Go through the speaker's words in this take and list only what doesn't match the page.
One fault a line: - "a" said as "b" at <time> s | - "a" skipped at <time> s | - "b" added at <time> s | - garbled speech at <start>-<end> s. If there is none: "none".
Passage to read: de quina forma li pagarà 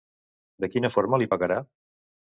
none